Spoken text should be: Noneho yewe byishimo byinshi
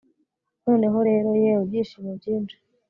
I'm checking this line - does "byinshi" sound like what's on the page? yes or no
yes